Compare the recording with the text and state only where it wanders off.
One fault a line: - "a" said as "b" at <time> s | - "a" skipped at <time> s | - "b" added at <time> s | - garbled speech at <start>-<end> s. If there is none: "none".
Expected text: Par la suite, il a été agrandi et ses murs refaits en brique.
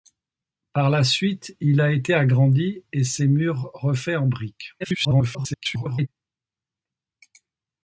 - garbled speech at 4.8-6.1 s